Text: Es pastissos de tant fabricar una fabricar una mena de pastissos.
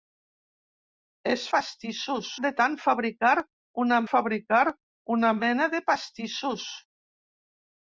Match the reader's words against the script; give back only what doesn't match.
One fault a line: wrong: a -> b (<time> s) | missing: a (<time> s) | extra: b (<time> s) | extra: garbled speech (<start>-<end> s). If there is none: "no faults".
no faults